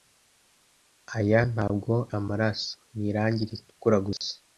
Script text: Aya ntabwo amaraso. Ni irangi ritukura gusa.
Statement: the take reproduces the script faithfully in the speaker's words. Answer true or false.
true